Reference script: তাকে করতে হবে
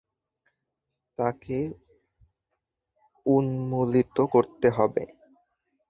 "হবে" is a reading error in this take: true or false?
false